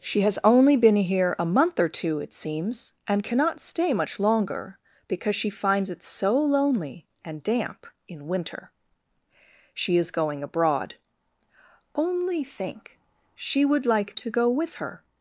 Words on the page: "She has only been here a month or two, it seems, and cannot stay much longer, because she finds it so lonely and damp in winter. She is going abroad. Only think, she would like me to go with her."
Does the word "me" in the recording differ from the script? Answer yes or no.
yes